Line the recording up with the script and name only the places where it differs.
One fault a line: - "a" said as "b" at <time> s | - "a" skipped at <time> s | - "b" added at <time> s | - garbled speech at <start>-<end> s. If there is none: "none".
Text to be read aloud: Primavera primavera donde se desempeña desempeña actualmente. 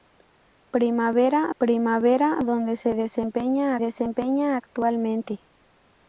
none